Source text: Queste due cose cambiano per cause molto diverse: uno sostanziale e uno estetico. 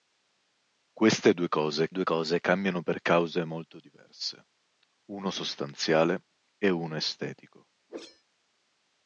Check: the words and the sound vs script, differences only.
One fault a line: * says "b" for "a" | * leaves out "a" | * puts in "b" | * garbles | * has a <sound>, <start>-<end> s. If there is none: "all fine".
* puts in "due cose"
* has a whoosh, 7.9-8.2 s